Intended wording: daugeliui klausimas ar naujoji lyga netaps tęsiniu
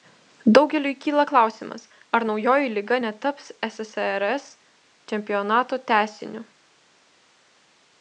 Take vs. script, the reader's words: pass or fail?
fail